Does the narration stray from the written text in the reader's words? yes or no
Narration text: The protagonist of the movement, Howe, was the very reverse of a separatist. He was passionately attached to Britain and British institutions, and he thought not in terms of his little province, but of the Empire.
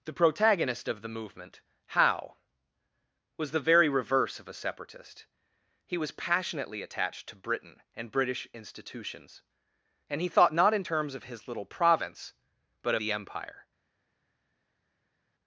yes